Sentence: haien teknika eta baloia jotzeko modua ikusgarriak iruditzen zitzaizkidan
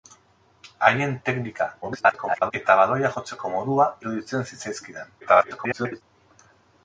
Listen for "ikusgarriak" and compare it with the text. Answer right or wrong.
wrong